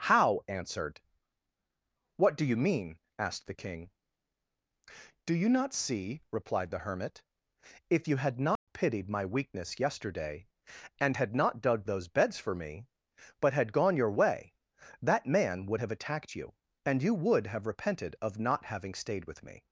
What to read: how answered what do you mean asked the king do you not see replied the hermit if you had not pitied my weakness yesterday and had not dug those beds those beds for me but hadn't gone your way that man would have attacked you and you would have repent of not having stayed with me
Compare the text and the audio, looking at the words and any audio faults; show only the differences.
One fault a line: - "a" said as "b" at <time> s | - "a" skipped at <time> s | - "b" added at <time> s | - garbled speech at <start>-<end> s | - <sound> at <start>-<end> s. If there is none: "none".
- dropout at 8.6-8.7 s
- "those beds" skipped at 12.4 s
- "hadn't" said as "had" at 13.5 s
- "repent" said as "repented" at 17.7 s